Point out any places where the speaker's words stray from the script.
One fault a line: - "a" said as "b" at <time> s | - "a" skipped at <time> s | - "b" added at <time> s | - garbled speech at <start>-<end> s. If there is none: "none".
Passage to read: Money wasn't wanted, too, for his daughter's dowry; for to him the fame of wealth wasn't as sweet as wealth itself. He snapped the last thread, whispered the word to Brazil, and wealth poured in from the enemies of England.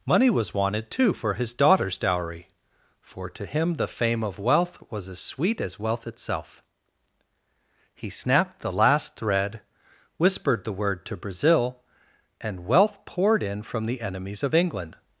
- "wasn't" said as "was" at 0.3 s
- "wasn't" said as "was" at 4.9 s